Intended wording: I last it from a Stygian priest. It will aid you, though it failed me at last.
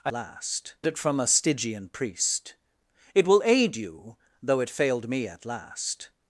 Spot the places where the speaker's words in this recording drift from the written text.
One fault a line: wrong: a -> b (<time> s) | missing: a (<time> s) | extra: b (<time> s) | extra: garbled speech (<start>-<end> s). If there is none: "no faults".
no faults